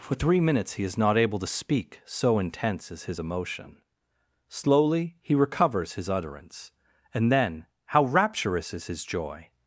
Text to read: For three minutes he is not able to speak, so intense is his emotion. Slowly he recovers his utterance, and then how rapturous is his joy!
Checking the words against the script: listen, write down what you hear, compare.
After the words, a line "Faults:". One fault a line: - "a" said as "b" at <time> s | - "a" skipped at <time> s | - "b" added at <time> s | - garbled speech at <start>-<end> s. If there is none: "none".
For three minutes he is not able to speak, so intense is his emotion. Slowly he recovers his utterance, and then how rapturous is his joy!
Faults:
none